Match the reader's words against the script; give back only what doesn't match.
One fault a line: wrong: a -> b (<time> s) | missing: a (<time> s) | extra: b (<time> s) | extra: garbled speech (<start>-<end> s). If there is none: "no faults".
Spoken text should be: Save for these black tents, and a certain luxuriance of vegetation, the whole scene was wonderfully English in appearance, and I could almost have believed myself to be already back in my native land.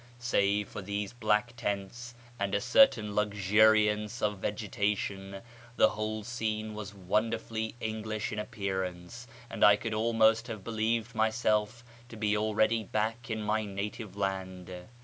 no faults